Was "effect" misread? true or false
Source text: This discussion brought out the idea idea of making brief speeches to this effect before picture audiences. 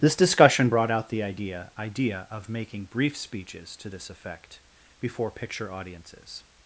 false